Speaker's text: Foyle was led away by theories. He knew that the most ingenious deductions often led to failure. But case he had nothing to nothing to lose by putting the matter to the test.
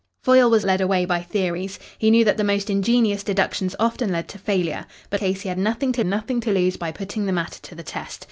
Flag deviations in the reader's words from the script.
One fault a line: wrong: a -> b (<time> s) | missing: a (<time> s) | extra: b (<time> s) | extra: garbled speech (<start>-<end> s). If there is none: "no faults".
no faults